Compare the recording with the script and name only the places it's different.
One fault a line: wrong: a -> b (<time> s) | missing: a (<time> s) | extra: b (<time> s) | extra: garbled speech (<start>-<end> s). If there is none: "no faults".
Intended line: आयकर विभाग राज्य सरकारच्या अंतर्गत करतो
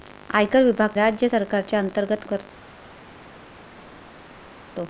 no faults